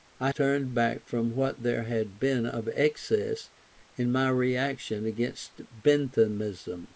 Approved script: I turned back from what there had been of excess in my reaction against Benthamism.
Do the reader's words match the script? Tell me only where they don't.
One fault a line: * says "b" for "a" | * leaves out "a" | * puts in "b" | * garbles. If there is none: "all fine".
all fine